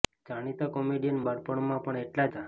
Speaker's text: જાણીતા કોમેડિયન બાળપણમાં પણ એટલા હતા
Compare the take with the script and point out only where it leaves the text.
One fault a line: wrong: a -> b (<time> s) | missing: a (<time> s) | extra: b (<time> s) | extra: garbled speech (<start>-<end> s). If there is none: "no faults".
no faults